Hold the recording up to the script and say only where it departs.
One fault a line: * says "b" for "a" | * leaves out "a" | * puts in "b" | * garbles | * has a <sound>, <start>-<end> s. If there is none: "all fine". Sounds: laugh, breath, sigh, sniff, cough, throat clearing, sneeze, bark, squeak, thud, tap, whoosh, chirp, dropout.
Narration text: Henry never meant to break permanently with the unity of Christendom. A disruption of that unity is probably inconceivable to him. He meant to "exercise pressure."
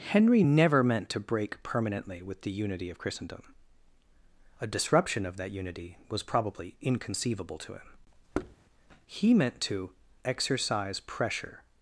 * says "was" for "is"
* has a thud, 8.3-8.6 s